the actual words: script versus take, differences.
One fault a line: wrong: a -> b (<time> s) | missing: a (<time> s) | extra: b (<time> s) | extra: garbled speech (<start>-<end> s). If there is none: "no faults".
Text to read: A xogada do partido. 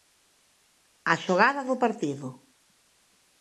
no faults